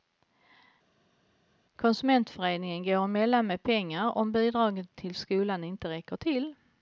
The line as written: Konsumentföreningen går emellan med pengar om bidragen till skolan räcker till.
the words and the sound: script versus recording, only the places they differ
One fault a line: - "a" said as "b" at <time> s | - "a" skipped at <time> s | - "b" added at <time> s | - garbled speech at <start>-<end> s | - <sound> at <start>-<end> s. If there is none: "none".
- "inte" added at 5.6 s